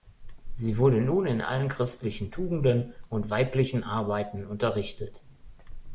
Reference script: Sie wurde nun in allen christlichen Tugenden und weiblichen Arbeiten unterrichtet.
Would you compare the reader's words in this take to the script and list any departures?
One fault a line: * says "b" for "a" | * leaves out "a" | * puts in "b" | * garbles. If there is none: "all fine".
all fine